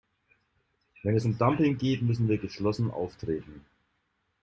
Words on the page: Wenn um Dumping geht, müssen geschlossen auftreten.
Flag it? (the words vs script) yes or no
yes